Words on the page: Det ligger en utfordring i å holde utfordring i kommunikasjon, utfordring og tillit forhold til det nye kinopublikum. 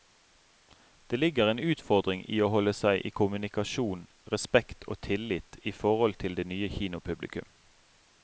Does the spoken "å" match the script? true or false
true